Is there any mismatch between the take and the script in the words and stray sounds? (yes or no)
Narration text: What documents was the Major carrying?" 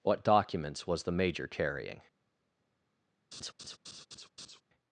yes